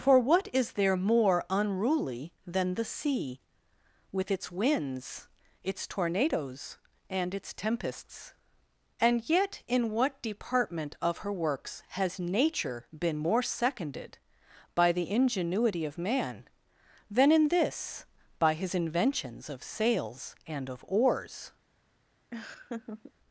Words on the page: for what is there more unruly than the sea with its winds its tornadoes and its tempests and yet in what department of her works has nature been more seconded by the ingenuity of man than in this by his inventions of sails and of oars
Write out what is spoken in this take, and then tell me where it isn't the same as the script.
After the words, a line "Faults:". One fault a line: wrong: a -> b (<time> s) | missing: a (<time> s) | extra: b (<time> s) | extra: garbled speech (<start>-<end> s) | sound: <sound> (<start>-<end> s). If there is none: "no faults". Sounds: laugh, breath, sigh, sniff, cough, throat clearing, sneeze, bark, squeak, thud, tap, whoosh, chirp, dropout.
for what is there more unruly than the sea with its winds its tornadoes and its tempests and yet in what department of her works has nature been more seconded by the ingenuity of man than in this by his inventions of sails and of oars
Faults:
sound: laugh (22.3-23.1 s)